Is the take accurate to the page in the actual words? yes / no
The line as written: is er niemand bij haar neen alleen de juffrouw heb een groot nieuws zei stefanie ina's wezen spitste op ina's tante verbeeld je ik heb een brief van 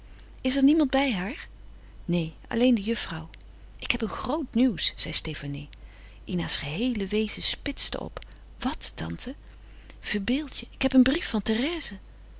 no